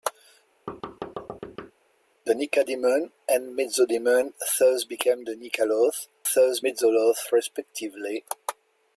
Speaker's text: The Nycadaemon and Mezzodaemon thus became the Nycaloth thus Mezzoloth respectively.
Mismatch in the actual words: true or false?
false